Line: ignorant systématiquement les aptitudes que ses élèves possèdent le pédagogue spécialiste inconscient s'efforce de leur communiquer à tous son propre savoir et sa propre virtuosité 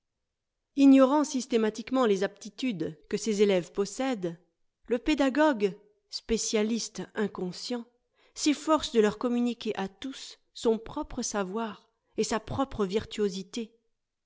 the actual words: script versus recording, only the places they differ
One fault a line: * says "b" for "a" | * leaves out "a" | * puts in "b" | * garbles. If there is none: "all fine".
all fine